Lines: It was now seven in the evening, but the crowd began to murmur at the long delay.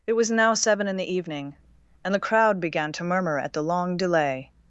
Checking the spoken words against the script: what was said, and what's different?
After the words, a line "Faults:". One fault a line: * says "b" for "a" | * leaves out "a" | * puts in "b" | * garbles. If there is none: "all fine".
It was now seven in the evening, and the crowd began to murmur at the long delay.
Faults:
* says "and" for "but"